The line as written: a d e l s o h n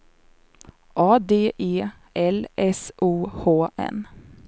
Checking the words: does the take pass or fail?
pass